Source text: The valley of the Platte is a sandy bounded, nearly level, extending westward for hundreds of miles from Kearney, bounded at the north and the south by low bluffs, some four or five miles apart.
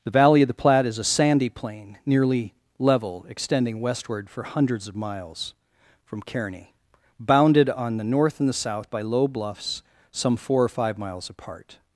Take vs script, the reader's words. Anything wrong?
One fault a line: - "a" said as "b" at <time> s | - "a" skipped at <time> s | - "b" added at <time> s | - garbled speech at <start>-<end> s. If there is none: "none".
- "bounded" said as "plain" at 1.5 s
- "at" said as "on" at 7.7 s